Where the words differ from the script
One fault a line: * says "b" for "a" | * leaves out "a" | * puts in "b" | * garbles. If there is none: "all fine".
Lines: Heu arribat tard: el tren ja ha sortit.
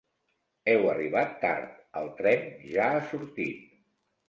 all fine